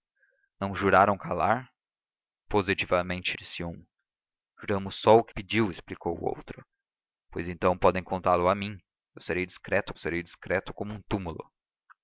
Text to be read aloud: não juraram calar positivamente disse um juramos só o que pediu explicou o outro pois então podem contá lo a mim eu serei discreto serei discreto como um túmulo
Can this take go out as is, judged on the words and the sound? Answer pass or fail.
pass